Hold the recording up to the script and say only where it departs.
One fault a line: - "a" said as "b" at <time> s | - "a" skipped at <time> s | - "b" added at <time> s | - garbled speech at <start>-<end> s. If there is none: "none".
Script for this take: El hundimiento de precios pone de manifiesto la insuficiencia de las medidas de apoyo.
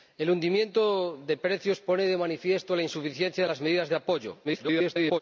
- garbled speech at 4.4-5.2 s